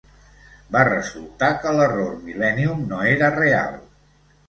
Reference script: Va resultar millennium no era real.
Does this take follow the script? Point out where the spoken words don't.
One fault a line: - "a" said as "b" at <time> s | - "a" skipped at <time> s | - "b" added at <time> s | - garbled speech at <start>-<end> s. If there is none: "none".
- "que l'error" added at 1.6 s